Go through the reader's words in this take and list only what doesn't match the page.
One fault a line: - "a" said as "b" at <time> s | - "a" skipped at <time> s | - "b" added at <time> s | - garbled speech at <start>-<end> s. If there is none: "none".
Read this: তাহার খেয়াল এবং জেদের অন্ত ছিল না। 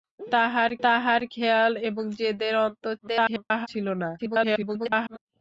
- "তাহার" added at 0.8 s
- garbled speech at 3.0-3.7 s
- garbled speech at 4.2-5.2 s